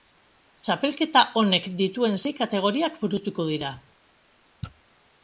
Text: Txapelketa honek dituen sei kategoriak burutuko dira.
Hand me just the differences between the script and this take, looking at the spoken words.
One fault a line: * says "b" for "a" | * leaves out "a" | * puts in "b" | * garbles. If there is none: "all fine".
all fine